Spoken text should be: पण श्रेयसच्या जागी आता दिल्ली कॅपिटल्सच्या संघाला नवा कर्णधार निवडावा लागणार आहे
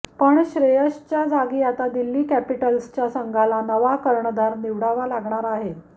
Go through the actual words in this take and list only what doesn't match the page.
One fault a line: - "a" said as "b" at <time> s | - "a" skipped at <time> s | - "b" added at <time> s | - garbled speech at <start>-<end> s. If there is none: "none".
none